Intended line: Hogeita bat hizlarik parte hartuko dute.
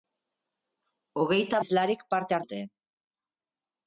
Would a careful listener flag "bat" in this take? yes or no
yes